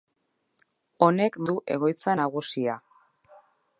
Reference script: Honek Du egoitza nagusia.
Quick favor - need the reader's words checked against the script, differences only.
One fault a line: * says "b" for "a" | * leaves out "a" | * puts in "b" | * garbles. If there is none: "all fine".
all fine